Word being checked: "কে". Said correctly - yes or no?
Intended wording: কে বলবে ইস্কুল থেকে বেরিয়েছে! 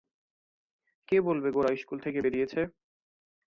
yes